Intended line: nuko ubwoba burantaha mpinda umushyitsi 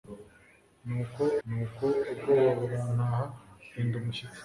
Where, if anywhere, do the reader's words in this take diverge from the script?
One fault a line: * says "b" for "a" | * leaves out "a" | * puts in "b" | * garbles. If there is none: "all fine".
* puts in "nuko"